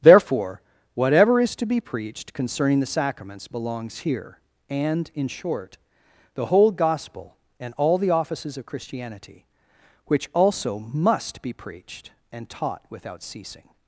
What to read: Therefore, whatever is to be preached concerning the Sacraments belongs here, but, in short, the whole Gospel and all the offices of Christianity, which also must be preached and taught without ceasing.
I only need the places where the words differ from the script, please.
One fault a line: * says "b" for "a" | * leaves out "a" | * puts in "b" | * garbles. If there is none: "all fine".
* says "and" for "but"